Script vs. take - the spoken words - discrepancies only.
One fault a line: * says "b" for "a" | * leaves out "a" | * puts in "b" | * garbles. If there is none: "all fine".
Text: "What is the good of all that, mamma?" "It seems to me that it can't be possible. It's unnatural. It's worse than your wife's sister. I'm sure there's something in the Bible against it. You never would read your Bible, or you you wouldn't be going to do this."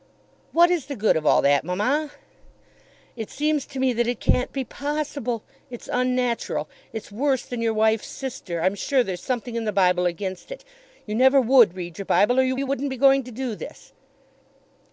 all fine